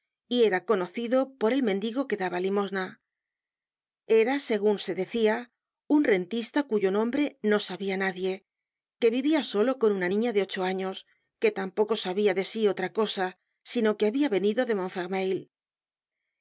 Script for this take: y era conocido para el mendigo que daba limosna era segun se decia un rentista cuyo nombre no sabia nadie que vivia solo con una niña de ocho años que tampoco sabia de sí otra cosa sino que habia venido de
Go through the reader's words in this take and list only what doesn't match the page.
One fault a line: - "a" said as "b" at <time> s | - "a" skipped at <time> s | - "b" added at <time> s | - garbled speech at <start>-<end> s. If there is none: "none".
- "para" said as "por" at 1.4 s